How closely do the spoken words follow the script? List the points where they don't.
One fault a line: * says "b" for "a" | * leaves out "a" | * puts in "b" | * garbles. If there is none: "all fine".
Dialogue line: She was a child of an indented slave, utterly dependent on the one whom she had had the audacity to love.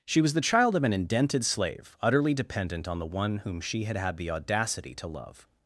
* says "the" for "a"